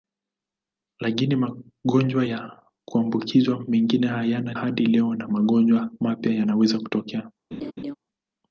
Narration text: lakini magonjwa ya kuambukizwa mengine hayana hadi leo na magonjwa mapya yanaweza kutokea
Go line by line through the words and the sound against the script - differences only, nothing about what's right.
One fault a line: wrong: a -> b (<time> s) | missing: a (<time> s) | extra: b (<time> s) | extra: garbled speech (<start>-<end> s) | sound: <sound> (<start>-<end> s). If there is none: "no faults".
sound: laugh (7.5-8.0 s)